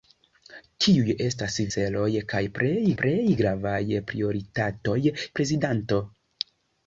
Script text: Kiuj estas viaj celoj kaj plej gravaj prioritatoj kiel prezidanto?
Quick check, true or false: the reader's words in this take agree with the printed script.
false